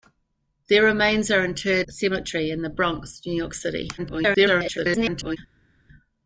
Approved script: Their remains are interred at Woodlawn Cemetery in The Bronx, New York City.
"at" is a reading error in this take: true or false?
true